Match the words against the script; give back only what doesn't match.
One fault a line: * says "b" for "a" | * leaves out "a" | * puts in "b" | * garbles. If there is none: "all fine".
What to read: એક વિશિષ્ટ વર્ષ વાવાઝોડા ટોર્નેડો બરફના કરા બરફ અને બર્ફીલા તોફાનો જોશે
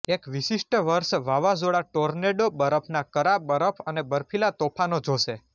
all fine